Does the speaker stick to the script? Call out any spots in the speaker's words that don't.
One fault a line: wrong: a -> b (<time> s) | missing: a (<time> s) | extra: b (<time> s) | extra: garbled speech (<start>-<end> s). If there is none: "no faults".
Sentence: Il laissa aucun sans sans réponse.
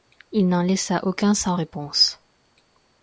extra: n'en (0.5 s)
missing: sans (1.6 s)